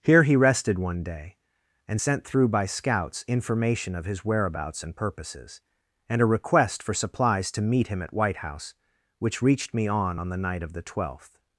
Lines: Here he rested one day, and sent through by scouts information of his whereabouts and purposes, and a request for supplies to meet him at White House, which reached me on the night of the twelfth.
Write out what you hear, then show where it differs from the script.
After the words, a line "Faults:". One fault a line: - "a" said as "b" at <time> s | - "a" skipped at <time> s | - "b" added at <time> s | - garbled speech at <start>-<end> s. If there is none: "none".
Here he rested one day, and sent through by scouts information of his whereabouts and purposes, and a request for supplies to meet him at White House, which reached me on on the night of the twelfth.
Faults:
- "on" added at 10.2 s